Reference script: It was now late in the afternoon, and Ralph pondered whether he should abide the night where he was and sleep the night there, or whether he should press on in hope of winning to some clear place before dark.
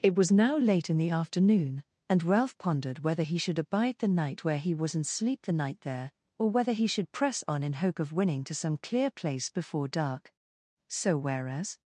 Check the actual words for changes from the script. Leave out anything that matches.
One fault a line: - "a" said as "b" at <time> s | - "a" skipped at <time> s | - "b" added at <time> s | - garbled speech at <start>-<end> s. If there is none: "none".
- "So whereas" added at 10.9 s